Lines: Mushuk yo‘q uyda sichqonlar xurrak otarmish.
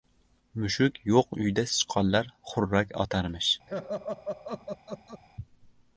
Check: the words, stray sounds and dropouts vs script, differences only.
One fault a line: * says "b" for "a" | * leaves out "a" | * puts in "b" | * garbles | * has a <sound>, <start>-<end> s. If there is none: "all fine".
* has a laugh, 3.7-5.2 s